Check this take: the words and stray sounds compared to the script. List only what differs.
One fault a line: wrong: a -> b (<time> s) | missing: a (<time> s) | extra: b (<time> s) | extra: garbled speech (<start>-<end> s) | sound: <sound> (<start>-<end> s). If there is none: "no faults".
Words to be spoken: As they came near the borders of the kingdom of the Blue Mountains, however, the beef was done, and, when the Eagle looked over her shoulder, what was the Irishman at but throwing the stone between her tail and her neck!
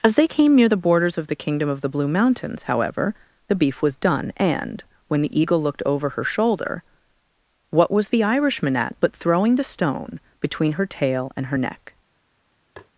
sound: tap (12.8-12.9 s)